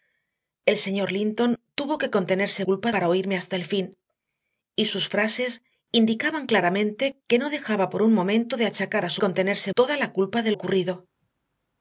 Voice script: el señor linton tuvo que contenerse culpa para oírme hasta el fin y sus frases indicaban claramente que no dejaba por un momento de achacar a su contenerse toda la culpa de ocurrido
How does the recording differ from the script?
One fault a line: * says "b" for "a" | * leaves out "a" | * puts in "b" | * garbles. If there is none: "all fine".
all fine